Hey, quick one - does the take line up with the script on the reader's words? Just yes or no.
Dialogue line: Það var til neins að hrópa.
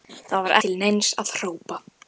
yes